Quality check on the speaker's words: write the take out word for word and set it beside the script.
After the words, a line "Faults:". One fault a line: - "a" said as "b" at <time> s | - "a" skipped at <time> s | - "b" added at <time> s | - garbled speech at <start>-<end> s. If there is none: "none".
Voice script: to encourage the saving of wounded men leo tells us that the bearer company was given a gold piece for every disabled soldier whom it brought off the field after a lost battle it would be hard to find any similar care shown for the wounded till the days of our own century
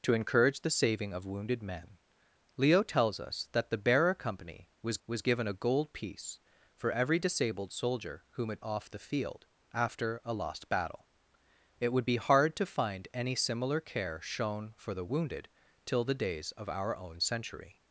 to encourage the saving of wounded men leo tells us that the bearer company was was given a gold piece for every disabled soldier whom it off the field after a lost battle it would be hard to find any similar care shown for the wounded till the days of our own century
Faults:
- "was" added at 5.1 s
- "brought" skipped at 8.6 s